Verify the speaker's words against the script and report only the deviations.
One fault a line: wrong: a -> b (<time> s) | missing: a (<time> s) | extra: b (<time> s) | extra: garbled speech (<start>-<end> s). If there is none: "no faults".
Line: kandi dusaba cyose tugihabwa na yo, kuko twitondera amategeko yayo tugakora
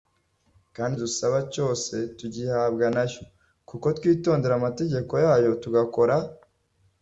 no faults